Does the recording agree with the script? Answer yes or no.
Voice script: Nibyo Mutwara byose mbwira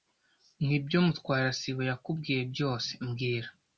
no